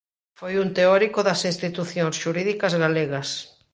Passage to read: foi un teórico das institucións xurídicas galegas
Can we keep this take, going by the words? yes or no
yes